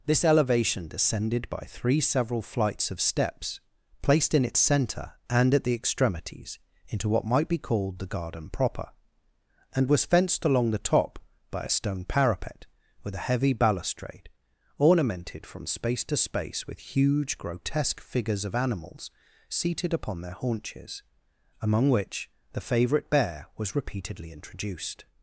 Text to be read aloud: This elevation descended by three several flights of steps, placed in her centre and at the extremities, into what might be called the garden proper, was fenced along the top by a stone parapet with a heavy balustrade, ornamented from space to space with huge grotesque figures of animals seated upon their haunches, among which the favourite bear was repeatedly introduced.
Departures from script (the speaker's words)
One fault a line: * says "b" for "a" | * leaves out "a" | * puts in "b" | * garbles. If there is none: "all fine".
* says "its" for "her"
* puts in "and"